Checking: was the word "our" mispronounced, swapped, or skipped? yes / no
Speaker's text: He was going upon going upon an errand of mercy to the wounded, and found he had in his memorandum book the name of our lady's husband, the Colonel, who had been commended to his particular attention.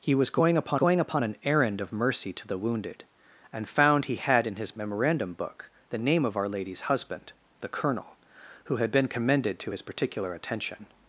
no